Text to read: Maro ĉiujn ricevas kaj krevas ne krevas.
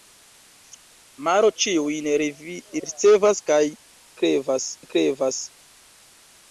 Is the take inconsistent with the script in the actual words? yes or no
no